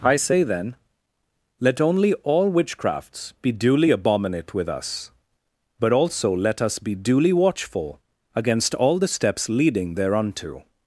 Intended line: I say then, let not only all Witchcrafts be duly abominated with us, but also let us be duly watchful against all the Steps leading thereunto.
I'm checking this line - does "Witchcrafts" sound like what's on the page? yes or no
yes